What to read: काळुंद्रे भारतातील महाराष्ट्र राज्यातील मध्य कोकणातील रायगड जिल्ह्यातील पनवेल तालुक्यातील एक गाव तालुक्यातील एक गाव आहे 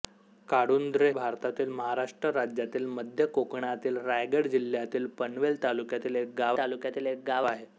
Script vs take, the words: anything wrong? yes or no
no